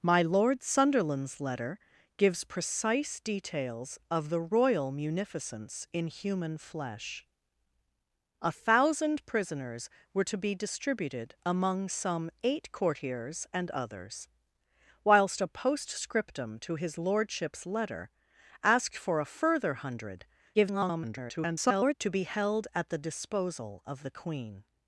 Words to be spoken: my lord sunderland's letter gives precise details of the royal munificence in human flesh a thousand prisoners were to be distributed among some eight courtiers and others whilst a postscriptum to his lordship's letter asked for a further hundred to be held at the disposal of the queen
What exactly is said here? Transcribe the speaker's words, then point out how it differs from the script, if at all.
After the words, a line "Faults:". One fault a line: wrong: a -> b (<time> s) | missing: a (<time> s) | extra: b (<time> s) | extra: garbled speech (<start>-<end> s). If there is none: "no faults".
my lord sunderland's letter gives precise details of the royal munificence in human flesh a thousand prisoners were to be distributed among some eight courtiers and others whilst a postscriptum to his lordship's letter asked for a further hundred [garbled] to be held at the disposal of the queen
Faults:
extra: garbled speech (20.5-21.9 s)